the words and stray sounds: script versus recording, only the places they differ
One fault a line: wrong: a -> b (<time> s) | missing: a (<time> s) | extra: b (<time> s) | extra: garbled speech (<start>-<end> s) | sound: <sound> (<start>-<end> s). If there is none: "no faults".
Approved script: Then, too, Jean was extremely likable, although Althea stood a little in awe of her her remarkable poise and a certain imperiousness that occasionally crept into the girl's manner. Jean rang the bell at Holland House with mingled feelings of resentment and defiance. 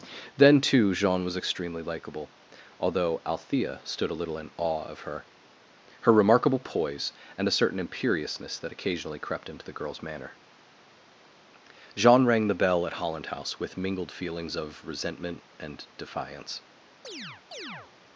sound: chirp (17.0-17.9 s)